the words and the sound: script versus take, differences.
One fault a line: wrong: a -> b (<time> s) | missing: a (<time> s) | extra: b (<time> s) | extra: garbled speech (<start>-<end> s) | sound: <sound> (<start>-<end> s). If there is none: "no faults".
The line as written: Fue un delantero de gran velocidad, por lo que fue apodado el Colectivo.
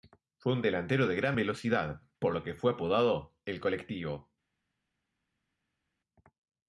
no faults